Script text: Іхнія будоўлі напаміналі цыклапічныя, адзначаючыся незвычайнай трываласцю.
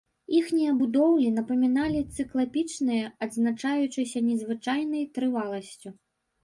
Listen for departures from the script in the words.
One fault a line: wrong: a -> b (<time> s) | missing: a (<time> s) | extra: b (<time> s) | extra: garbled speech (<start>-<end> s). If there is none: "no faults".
no faults